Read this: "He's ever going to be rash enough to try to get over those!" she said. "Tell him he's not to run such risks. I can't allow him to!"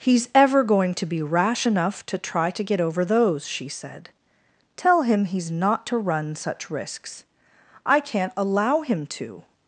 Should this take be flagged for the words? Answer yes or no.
no